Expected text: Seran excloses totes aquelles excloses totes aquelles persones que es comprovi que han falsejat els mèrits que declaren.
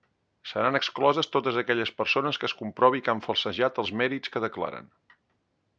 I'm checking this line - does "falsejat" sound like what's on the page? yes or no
yes